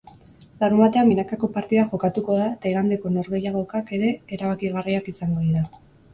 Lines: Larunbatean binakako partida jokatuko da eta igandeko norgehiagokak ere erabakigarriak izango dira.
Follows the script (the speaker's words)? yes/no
yes